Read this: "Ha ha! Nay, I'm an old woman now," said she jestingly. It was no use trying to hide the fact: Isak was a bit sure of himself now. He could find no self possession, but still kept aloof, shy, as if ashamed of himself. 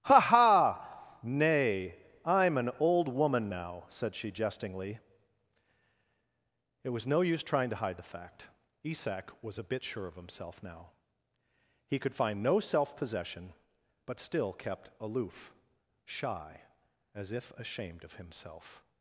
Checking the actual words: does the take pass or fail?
pass